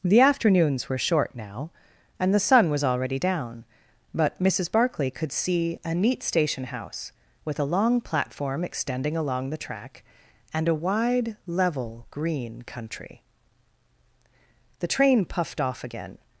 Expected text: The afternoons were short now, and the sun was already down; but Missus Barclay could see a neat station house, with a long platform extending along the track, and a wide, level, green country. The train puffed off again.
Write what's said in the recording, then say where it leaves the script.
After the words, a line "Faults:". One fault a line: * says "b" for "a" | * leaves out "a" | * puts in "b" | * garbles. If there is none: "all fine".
The afternoons were short now, and the sun was already down; but Missus Barclay could see a neat station house, with a long platform extending along the track, and a wide, level, green country. The train puffed off again.
Faults:
all fine